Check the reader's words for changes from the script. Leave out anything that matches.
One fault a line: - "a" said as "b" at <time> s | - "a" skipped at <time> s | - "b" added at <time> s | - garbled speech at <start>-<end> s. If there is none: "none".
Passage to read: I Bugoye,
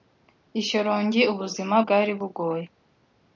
- "Shyorongi ubuzima bwari" added at 0.7 s